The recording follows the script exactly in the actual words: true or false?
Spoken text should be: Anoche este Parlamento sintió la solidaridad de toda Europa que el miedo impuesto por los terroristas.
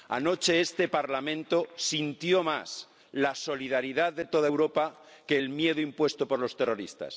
false